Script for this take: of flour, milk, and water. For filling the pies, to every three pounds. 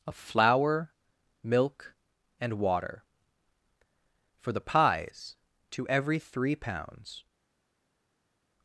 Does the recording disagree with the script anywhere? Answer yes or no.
yes